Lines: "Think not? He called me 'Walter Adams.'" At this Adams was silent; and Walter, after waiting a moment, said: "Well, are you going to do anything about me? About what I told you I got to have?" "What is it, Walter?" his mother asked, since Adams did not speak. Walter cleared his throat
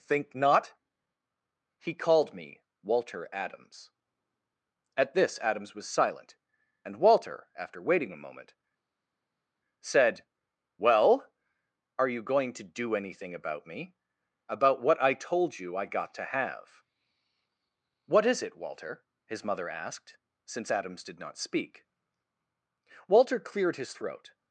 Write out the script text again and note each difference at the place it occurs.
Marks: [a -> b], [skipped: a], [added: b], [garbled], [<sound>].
"Think not? He called me 'Walter Adams.'" At this Adams was silent; and Walter, after waiting a moment, said: "Well, are you going to do anything about me? About what I told you I got to have?" "What is it, Walter?" his mother asked, since Adams did not speak. Walter cleared his throat